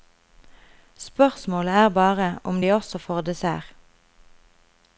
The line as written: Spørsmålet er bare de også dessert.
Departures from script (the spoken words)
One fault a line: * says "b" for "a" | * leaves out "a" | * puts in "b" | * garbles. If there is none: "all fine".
* puts in "om"
* puts in "får"